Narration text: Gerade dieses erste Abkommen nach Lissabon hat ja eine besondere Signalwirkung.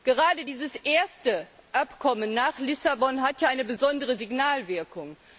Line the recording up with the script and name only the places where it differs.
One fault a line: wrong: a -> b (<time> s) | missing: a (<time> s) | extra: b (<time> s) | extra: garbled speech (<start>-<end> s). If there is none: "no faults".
no faults